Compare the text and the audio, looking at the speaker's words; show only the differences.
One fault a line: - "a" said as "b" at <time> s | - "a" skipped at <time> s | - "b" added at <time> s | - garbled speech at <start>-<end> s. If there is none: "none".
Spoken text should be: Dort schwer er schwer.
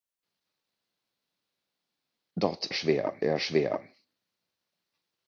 none